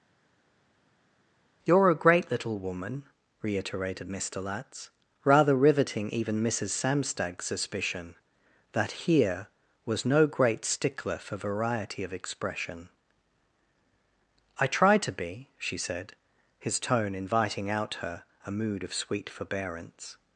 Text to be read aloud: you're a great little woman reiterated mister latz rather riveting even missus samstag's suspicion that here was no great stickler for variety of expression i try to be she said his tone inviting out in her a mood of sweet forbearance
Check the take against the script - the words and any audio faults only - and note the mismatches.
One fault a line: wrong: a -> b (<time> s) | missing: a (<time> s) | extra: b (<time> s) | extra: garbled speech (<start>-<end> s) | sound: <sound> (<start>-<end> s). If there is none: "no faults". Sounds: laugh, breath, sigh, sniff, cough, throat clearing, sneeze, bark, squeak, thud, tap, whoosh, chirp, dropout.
missing: in (17.9 s)